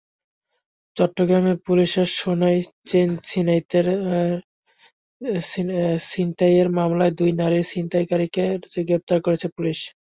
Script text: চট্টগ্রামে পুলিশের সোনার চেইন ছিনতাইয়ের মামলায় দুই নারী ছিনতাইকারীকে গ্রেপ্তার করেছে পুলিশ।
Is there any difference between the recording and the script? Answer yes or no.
no